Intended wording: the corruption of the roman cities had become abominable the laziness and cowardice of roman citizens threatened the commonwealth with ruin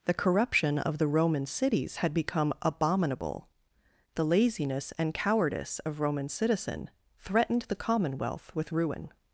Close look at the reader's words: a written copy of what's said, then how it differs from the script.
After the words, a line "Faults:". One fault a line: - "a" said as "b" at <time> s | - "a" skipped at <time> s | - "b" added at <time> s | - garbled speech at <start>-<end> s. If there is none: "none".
the corruption of the roman cities had become abominable the laziness and cowardice of roman citizen threatened the commonwealth with ruin
Faults:
- "citizens" said as "citizen" at 6.3 s